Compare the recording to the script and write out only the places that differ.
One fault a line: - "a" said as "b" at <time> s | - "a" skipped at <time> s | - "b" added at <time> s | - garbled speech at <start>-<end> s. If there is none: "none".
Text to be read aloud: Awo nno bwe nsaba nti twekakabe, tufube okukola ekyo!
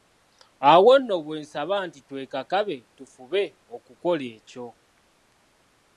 none